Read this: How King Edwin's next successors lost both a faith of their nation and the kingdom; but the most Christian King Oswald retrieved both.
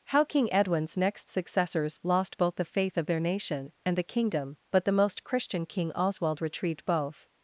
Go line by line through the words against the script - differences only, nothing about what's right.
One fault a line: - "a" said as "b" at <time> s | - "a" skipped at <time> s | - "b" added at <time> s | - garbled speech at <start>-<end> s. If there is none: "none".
- "a" said as "the" at 2.6 s